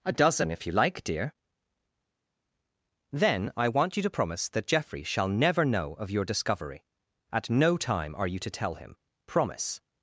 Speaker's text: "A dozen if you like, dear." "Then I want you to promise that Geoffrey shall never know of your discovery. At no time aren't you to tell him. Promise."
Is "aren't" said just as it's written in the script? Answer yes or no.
no